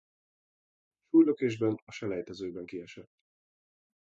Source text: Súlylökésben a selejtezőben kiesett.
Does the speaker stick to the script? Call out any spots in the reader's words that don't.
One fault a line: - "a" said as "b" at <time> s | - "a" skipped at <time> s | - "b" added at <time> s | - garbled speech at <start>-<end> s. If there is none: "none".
none